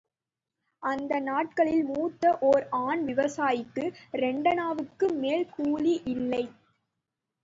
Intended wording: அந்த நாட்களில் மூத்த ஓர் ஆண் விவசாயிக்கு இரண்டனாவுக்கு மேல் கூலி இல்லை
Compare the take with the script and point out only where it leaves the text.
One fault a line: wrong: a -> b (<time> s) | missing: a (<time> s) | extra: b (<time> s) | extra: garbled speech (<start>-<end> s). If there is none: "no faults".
no faults